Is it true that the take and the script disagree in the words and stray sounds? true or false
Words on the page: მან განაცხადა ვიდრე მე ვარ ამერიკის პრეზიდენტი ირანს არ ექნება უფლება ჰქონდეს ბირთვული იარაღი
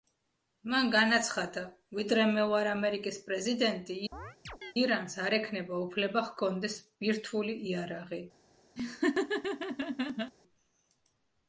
true